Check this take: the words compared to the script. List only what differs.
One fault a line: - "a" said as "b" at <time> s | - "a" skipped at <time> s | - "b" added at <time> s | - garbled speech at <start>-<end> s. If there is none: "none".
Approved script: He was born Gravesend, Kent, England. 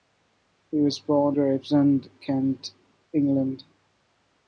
none